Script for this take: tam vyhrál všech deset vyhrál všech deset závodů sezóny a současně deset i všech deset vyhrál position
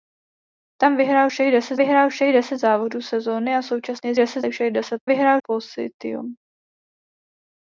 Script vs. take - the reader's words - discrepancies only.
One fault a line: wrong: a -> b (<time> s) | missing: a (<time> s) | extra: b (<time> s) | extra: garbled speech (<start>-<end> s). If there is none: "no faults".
no faults